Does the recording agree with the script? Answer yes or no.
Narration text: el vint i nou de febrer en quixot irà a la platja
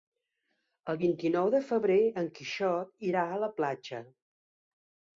yes